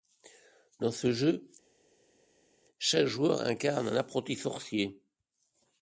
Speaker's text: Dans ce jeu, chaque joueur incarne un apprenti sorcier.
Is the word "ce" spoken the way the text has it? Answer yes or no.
yes